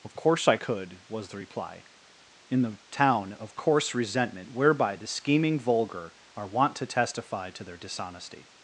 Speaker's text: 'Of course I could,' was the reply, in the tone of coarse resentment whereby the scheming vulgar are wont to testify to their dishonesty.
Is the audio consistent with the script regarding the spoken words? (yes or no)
no